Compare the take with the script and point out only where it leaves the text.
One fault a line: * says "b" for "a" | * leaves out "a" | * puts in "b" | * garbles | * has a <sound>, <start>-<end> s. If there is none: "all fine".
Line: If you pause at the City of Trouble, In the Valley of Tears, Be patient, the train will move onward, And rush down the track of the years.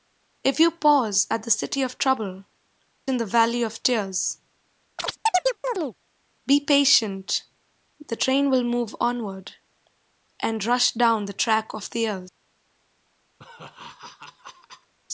* has a chirp, 5.0-6.0 s
* has a laugh, 13.4-14.9 s